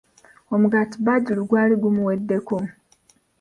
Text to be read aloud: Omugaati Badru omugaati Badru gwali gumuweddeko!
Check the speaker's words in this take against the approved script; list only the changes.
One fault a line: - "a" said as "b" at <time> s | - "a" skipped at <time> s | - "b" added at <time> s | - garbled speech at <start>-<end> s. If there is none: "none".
- "omugaati Badru" skipped at 1.4 s